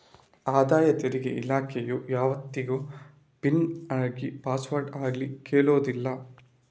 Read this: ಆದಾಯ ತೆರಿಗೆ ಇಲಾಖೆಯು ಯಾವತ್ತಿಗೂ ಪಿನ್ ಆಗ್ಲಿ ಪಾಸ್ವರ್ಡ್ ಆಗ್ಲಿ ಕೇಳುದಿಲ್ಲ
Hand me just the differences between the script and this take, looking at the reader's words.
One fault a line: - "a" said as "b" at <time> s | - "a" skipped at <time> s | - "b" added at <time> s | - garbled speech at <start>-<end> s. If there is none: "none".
none